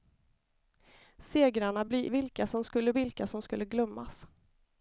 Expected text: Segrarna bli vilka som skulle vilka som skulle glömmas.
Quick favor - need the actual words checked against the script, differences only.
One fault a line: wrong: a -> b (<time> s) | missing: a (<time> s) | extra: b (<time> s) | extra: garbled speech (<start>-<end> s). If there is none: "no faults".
no faults